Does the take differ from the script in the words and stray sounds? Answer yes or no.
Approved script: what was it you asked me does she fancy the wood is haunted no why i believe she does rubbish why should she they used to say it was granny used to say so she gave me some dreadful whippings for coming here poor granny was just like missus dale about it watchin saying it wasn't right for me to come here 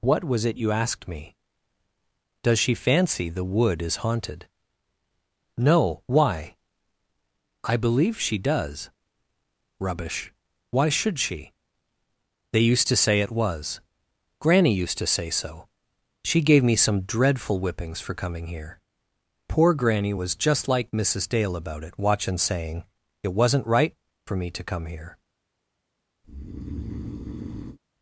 yes